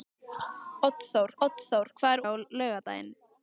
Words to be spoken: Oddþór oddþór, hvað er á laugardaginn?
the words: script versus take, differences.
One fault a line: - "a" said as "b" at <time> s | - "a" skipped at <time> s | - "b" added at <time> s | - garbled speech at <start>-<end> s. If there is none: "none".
none